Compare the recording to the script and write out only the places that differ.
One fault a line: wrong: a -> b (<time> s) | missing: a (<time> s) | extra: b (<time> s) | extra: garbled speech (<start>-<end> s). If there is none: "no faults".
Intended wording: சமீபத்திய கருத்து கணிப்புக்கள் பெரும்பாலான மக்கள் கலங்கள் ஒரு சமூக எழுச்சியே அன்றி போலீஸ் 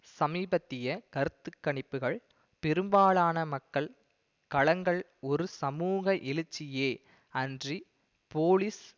no faults